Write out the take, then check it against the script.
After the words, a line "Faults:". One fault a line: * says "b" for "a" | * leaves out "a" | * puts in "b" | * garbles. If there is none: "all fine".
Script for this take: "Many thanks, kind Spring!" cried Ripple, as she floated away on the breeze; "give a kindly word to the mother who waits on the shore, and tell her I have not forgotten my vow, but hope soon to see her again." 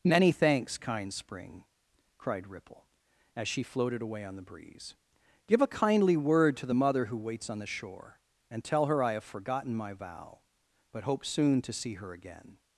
"Many thanks, kind Spring!" cried Ripple, as she floated away on the breeze; "give a kindly word to the mother who waits on the shore, and tell her I have forgotten my vow, but hope soon to see her again."
Faults:
* leaves out "not"